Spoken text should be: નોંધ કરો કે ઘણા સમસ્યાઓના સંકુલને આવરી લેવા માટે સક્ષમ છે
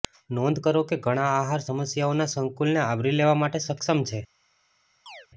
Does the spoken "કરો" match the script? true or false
true